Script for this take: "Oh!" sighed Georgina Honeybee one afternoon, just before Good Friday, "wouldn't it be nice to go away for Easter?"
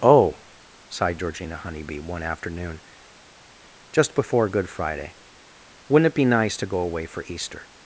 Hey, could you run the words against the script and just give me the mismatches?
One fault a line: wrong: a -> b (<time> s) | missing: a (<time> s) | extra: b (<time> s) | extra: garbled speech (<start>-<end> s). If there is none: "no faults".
no faults